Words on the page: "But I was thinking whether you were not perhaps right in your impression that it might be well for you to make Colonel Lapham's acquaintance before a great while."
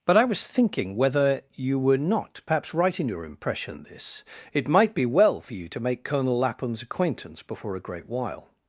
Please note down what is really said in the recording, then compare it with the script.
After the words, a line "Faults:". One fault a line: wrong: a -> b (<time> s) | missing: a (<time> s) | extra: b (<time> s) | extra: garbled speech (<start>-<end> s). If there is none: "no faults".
"But I was thinking whether you were not perhaps right in your impression this it might be well for you to make Colonel Lapham's acquaintance before a great while."
Faults:
wrong: that -> this (3.8 s)